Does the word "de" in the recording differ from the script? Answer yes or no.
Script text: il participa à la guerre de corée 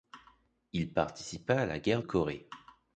yes